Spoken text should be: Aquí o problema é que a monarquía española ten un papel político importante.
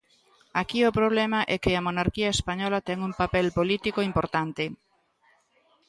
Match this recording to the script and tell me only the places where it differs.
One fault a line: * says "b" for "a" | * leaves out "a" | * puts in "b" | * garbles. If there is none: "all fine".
all fine